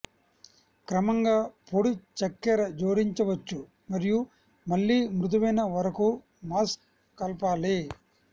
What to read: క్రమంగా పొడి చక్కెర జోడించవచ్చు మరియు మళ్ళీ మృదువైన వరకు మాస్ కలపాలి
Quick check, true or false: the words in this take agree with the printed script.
true